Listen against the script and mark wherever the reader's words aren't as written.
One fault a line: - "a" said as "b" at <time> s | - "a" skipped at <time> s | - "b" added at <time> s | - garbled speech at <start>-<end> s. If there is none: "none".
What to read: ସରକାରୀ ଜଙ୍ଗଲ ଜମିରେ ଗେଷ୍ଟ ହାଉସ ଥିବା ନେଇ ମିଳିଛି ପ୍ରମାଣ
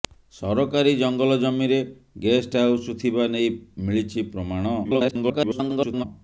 - garbled speech at 4.8-6.0 s